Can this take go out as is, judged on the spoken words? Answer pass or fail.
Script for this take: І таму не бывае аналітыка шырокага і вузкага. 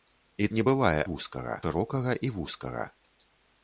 fail